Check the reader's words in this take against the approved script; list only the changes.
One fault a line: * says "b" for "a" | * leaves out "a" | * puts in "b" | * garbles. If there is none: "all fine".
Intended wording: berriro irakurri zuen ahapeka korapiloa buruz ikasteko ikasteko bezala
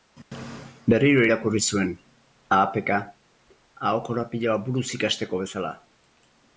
* puts in "aho"
* leaves out "ikasteko"